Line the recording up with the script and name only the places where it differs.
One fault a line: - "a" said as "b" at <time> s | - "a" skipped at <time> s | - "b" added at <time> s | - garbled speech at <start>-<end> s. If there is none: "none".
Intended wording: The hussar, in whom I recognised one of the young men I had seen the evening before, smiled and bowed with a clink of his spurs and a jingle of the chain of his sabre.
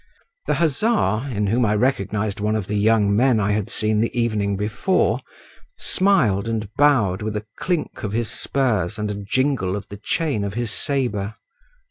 none